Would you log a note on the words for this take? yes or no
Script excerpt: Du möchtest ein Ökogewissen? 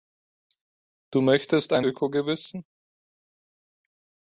no